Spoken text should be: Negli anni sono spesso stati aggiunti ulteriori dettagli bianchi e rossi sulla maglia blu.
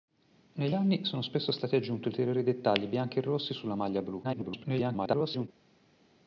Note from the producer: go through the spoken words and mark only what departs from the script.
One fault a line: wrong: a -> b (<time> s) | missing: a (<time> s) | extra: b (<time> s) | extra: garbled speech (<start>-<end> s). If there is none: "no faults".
extra: garbled speech (4.2-5.5 s)